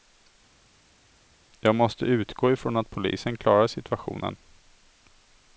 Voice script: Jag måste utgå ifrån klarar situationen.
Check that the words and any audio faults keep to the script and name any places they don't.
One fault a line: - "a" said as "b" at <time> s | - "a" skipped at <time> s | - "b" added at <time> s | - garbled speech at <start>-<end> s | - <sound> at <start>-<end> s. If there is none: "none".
- "att polisen" added at 2.8 s